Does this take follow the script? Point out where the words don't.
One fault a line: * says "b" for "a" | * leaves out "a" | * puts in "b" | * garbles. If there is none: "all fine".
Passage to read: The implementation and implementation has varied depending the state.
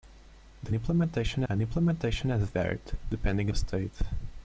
all fine